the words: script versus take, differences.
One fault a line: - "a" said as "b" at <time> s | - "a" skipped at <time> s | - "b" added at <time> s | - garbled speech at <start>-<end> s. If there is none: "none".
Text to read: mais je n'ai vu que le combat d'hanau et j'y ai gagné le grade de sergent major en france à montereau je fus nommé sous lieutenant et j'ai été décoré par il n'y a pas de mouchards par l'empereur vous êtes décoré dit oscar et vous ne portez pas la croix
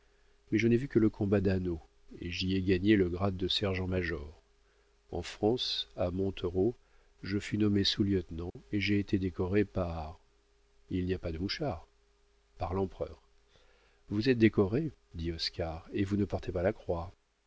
none